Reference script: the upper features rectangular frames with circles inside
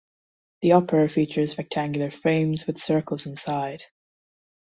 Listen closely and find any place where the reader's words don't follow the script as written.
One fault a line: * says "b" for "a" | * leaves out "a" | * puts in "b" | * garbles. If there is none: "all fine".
all fine